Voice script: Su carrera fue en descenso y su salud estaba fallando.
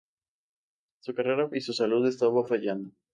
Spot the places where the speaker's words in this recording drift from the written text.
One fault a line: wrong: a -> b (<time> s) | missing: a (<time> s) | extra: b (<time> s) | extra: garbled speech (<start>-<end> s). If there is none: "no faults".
missing: fue en descenso (1.5 s)